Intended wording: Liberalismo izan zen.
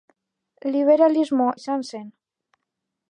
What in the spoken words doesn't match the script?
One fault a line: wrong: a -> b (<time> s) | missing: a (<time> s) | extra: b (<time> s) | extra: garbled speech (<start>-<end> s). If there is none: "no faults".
no faults